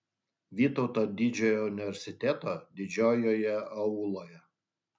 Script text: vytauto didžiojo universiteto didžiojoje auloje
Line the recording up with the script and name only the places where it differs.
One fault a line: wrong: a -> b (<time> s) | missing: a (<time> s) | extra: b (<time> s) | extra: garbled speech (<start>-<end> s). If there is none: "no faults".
no faults